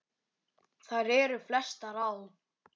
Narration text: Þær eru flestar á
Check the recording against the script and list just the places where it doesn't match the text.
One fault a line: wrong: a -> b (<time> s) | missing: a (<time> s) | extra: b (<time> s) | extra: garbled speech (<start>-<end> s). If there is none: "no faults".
no faults